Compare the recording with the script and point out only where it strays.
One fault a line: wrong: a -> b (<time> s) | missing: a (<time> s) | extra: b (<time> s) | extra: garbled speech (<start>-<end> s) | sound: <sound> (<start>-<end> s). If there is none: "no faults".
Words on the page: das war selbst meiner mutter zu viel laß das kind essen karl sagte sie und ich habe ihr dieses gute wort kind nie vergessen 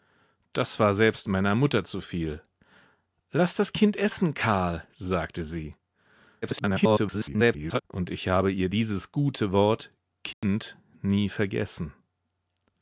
extra: garbled speech (6.4-7.8 s)
sound: dropout (10.3-10.4 s)